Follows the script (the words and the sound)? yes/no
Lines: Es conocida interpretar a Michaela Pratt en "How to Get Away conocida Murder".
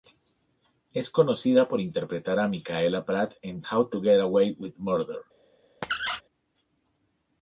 no